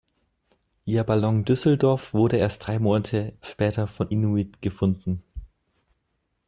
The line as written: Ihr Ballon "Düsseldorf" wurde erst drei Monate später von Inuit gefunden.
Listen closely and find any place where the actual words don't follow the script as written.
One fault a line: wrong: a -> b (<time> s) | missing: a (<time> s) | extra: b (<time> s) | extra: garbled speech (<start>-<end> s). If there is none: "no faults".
no faults